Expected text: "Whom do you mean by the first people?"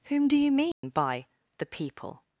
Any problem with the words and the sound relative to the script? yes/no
yes